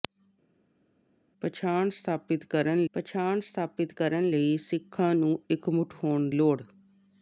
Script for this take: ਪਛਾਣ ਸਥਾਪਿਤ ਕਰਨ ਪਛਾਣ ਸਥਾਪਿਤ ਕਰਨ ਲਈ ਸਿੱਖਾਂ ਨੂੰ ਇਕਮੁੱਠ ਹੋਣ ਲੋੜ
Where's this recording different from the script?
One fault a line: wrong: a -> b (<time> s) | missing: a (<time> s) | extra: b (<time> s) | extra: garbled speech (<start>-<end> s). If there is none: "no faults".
no faults